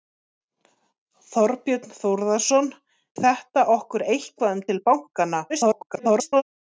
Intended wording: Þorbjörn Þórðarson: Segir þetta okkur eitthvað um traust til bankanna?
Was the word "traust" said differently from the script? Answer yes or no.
yes